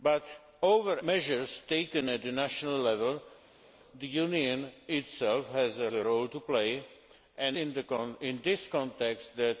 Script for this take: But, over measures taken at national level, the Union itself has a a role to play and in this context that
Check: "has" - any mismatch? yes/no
no